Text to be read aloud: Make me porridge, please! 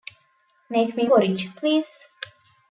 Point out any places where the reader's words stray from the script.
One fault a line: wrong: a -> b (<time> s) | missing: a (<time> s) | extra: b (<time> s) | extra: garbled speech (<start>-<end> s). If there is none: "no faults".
no faults